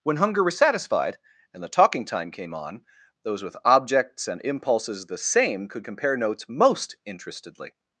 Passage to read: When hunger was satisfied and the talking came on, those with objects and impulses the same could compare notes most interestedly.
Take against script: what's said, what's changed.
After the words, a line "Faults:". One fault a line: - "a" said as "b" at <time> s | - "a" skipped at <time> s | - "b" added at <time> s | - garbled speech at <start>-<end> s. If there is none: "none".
When hunger was satisfied and the talking time came on, those with objects and impulses the same could compare notes most interestedly.
Faults:
- "time" added at 2.0 s